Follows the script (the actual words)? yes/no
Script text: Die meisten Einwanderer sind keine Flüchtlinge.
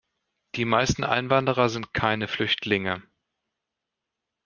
yes